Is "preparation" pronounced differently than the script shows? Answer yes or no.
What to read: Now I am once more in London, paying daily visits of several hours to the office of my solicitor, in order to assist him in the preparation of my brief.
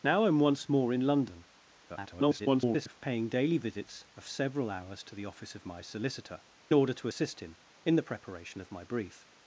no